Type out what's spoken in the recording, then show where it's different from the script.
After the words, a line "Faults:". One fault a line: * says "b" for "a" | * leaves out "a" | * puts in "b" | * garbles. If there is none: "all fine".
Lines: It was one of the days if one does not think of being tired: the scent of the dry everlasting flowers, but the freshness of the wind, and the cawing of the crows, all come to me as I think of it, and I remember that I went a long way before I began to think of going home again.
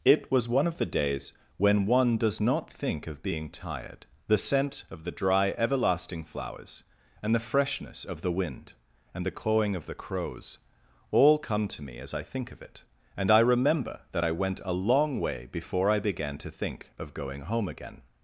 It was one of the days when one does not think of being tired: the scent of the dry everlasting flowers, and the freshness of the wind, and the cawing of the crows, all come to me as I think of it, and I remember that I went a long way before I began to think of going home again.
Faults:
* says "when" for "if"
* says "and" for "but"